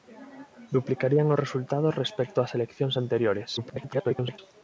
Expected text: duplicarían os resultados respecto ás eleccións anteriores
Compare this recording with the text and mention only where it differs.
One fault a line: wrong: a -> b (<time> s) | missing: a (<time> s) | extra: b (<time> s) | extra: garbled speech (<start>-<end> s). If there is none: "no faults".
extra: garbled speech (3.6-4.4 s)